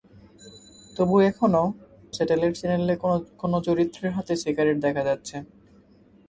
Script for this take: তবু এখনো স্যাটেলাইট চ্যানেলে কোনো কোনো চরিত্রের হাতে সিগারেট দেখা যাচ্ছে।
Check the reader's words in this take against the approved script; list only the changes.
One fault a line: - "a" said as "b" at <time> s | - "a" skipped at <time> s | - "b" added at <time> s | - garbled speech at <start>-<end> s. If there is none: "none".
none